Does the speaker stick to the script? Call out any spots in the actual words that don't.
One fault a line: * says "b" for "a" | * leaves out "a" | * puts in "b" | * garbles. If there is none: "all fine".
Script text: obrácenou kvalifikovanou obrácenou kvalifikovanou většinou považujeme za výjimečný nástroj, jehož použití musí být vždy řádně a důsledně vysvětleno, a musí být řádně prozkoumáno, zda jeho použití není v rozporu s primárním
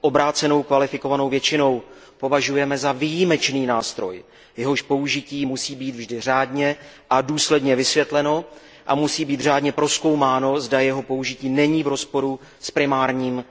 * leaves out "obrácenou kvalifikovanou"